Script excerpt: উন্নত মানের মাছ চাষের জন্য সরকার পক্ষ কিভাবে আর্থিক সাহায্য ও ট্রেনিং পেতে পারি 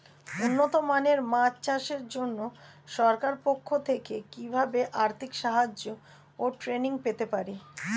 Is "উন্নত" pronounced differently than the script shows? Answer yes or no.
no